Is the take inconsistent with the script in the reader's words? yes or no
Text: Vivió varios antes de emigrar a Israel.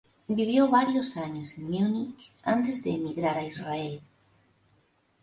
yes